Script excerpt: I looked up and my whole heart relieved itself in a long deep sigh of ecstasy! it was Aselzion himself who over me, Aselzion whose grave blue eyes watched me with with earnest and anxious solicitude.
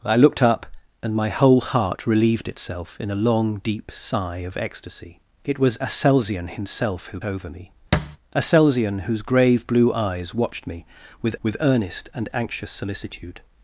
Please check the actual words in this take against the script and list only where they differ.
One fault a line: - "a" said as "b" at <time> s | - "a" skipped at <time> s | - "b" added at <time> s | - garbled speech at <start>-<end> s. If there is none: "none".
none